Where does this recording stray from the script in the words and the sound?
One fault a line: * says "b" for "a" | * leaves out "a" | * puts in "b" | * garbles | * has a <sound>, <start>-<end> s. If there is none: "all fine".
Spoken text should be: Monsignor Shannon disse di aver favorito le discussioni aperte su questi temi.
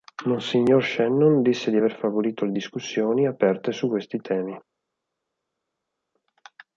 all fine